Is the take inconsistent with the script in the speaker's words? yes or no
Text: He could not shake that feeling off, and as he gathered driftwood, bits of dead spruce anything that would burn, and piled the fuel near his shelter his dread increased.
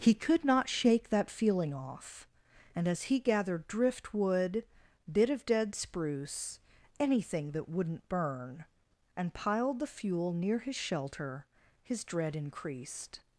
yes